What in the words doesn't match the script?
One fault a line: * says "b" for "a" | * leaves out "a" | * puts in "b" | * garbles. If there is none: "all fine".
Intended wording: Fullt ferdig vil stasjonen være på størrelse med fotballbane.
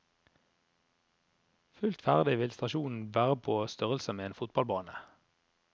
* puts in "en"